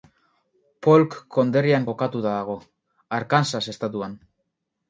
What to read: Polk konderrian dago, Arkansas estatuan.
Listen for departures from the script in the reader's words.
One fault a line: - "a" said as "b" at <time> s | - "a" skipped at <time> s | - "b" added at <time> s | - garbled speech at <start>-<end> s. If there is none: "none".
- "kokatuta" added at 1.9 s